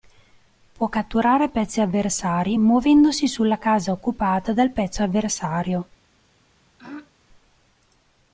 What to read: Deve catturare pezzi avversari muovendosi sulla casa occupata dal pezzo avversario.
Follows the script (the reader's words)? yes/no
no